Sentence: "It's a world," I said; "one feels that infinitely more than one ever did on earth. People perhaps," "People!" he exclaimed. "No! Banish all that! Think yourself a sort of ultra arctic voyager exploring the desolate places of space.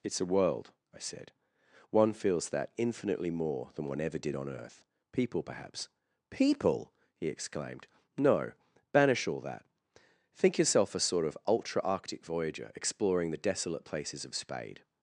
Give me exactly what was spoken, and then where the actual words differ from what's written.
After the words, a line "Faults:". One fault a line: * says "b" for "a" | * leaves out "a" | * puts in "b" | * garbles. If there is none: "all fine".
"It's a world," I said; "one feels that infinitely more than one ever did on earth. People perhaps," "People!" he exclaimed. "No! Banish all that! Think yourself a sort of ultra arctic voyager exploring the desolate places of spade.
Faults:
* says "spade" for "space"